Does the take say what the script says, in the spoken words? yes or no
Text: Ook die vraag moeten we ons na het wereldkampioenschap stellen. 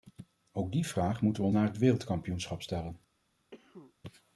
no